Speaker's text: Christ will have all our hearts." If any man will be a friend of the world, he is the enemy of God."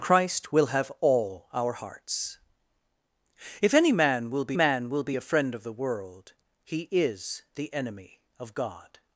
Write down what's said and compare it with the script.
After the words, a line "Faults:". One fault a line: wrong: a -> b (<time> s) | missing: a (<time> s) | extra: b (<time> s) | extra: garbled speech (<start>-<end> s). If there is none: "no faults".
Christ will have all our hearts." If any man will be man will be a friend of the world, he is the enemy of God."
Faults:
extra: man will be (4.5 s)